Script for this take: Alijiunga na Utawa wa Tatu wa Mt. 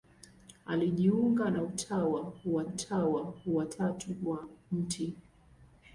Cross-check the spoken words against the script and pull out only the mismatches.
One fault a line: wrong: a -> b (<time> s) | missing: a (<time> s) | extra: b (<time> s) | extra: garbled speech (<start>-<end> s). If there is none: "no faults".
extra: Utawa wa (2.6 s)